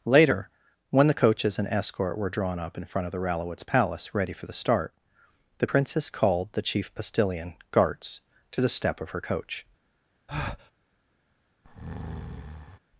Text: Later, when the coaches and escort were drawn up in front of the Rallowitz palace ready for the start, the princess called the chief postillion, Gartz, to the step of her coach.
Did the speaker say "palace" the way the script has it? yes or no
yes